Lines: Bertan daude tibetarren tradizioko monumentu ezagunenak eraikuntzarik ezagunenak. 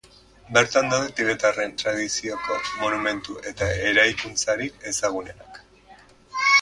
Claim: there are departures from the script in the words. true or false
true